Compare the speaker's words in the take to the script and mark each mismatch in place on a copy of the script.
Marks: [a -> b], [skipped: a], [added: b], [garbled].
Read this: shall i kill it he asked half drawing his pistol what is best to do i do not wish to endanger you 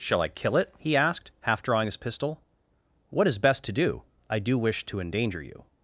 shall i kill it he asked half drawing his pistol what is best to do i do [skipped: not] wish to endanger you